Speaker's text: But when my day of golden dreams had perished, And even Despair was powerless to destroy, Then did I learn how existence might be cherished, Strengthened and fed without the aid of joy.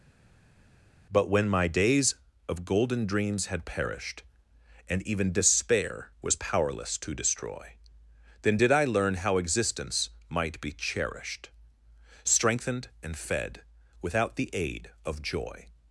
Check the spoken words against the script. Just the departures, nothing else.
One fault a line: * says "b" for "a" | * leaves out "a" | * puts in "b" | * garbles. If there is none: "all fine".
* says "days" for "day"